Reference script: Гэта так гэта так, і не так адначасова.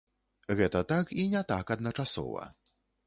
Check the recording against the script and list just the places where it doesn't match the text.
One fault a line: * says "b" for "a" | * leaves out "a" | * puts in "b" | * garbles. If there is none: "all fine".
* leaves out "гэта так"